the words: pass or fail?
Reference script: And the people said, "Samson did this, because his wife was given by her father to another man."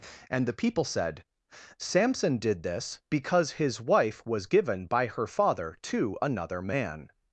pass